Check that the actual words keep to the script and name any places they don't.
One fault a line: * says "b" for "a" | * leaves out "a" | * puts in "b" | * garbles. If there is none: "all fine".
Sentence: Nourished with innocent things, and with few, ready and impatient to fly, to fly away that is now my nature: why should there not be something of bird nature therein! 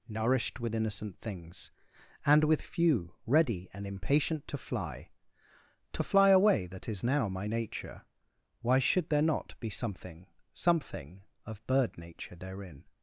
* puts in "something"